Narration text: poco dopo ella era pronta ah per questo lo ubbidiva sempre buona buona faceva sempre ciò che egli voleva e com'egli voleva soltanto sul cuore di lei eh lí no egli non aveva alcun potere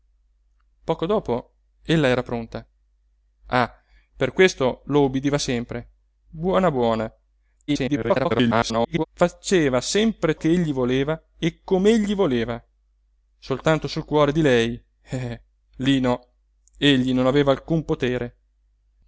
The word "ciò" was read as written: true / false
false